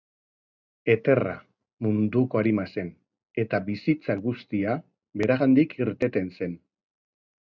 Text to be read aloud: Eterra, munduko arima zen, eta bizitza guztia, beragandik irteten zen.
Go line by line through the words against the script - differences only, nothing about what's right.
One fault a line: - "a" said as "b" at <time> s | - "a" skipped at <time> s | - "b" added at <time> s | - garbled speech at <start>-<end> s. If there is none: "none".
none